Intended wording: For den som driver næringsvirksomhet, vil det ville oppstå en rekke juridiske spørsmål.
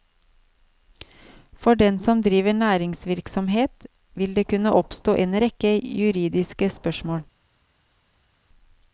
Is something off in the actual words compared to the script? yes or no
yes